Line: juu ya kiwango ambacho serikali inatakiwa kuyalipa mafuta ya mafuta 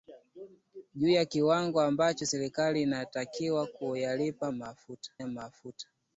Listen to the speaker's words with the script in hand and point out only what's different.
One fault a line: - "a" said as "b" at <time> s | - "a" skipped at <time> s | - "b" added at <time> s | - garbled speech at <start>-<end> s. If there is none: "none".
none